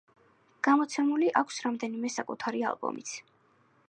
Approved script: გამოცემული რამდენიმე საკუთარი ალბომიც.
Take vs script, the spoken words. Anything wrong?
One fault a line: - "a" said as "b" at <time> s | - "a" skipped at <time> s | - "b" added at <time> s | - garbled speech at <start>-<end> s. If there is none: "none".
- "აქვს" added at 1.4 s